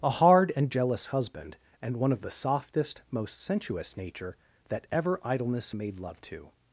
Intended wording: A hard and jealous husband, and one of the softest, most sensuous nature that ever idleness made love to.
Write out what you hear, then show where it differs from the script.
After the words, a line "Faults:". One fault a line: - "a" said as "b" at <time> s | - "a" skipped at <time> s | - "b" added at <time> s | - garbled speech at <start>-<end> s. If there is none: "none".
A hard and jealous husband, and one of the softest, most sensuous nature that ever idleness made love to.
Faults:
none